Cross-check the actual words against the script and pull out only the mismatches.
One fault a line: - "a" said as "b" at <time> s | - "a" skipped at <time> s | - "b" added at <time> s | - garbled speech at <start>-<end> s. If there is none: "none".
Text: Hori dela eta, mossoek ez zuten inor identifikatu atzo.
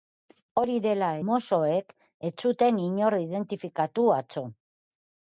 - "eta" skipped at 1.1 s